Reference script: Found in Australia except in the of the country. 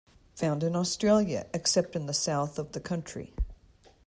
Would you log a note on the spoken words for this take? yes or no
yes